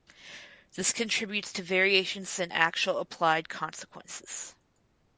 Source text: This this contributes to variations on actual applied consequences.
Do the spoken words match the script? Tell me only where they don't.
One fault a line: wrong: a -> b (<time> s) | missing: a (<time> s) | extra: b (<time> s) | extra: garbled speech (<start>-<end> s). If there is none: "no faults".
missing: this (0.9 s)
wrong: on -> in (2.4 s)